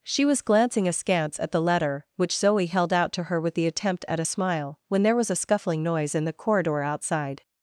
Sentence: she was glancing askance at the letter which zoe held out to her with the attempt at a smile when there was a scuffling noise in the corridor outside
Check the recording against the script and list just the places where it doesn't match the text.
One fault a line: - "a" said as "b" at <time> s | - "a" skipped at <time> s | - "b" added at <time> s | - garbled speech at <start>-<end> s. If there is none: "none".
none